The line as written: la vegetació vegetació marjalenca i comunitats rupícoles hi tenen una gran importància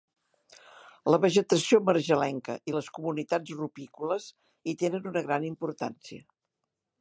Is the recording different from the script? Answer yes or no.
yes